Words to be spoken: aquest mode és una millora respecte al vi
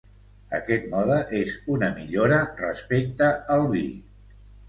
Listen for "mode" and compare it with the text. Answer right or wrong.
right